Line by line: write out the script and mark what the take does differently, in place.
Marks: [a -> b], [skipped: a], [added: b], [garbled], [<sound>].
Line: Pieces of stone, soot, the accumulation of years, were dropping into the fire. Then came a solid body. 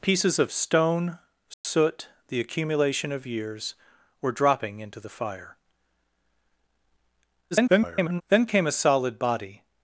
Pieces of stone, soot, [dropout] the accumulation of years, were dropping into the fire. [garbled] Then came a solid body.